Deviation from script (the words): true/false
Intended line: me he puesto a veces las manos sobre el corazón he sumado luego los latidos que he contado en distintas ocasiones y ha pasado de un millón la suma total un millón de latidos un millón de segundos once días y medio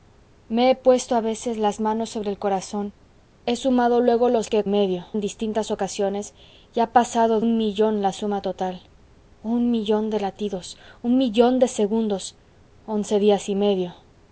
true